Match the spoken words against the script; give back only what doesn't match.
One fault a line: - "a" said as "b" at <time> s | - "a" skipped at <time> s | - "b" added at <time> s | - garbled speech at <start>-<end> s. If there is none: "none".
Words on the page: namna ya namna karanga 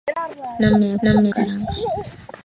none